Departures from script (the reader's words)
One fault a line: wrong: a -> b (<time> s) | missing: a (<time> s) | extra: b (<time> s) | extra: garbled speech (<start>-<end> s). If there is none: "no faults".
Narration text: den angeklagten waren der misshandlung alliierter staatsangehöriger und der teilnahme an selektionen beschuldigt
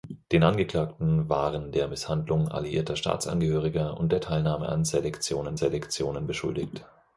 extra: selektionen (5.5 s)